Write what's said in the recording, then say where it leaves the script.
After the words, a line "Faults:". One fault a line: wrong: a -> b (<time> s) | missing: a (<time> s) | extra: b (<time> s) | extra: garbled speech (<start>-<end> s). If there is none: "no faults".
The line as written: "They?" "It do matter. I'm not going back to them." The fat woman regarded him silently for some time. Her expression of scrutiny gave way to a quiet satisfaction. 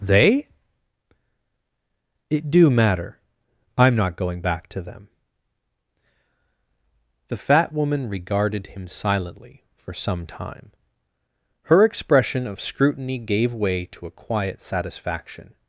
"They?" "It do matter. I'm not going back to them." The fat woman regarded him silently for some time. Her expression of scrutiny gave way to a quiet satisfaction.
Faults:
no faults